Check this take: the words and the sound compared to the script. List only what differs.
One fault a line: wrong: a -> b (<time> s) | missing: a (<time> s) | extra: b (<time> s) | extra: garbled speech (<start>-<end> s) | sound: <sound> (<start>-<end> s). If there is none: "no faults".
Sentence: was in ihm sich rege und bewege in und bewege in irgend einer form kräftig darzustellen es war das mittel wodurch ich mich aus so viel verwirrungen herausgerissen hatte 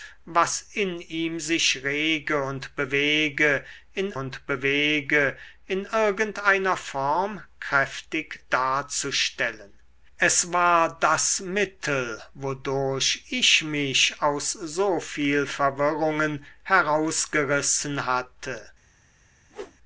sound: whoosh (19.5-19.8 s)